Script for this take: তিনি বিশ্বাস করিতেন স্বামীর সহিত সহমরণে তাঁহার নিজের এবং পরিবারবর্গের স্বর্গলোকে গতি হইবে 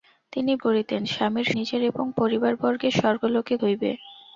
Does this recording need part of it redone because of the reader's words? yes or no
yes